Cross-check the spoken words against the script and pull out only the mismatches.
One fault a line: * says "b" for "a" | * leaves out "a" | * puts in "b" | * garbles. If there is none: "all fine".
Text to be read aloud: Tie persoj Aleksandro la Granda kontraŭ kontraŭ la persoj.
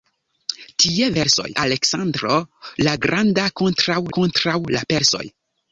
all fine